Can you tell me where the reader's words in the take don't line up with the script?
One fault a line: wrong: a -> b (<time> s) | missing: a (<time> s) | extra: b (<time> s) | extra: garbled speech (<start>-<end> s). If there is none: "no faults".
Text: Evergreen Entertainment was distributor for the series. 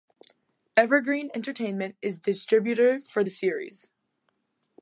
wrong: was -> is (2.0 s)